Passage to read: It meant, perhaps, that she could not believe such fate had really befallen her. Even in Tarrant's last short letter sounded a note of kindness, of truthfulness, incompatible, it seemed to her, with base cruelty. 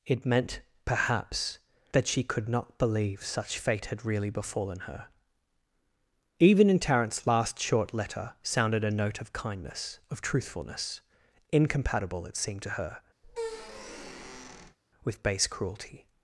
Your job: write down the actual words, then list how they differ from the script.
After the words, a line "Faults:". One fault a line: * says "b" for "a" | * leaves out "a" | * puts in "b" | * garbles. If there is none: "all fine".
It meant, perhaps, that she could not believe such fate had really befallen her. Even in Tarrant's last short letter sounded a note of kindness, of truthfulness, incompatible, it seemed to her, with base cruelty.
Faults:
all fine